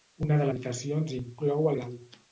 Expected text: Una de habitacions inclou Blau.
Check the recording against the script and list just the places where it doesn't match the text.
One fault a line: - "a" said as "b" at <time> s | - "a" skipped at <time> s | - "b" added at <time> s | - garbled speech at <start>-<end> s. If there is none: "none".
none